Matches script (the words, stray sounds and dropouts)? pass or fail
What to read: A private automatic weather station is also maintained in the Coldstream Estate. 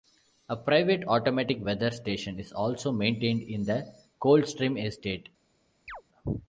fail